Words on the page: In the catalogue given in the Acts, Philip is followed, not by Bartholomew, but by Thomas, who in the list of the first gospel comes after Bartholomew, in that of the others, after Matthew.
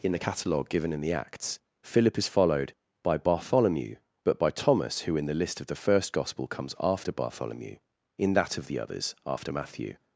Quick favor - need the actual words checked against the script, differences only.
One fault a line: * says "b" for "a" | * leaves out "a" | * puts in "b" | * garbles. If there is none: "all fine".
* leaves out "not"